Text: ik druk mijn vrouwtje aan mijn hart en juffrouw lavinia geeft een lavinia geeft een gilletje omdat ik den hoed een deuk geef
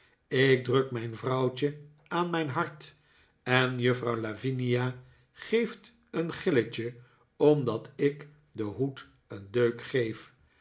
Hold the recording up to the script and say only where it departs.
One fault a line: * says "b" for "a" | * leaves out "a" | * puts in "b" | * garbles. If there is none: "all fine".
* leaves out "lavinia geeft een"